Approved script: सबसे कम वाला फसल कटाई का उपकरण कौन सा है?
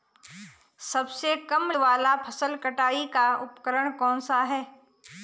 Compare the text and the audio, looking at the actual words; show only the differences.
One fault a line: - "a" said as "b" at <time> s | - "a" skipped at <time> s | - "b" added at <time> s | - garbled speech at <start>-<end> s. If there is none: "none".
none